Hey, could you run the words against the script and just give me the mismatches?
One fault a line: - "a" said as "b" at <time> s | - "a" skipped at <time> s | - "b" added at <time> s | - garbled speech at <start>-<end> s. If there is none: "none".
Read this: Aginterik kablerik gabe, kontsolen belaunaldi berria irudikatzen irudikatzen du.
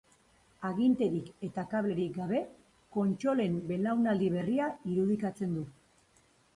- "eta" added at 1.5 s
- "irudikatzen" skipped at 5.6 s